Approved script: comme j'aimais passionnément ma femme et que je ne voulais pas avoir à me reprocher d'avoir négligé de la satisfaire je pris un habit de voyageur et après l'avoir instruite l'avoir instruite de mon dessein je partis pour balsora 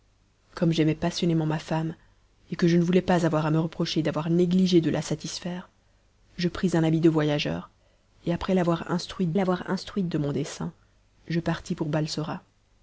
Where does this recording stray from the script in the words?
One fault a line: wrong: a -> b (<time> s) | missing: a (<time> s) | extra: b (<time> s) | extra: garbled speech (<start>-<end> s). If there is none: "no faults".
no faults